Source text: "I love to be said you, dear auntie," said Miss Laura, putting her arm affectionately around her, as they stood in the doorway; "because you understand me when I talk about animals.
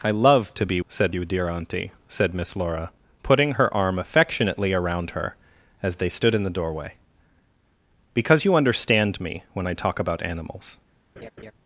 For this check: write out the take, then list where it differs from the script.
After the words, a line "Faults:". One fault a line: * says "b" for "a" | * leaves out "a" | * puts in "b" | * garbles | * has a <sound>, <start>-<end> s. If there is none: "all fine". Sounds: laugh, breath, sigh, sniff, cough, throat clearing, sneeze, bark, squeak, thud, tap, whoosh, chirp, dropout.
"I love to be said you, dear auntie," said Miss Laura, putting her arm affectionately around her, as they stood in the doorway; "because you understand me when I talk about animals.
Faults:
* has a laugh, 11.2-11.5 s